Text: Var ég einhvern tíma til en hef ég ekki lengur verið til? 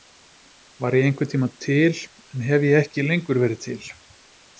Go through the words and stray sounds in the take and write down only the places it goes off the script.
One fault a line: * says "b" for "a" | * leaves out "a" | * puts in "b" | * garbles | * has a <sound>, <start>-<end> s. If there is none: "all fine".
all fine